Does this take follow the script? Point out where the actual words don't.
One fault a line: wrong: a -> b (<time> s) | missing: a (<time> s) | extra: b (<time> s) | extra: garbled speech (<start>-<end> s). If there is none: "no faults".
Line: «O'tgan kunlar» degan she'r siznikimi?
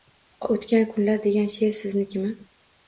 no faults